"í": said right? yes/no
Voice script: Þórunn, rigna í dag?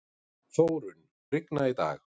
yes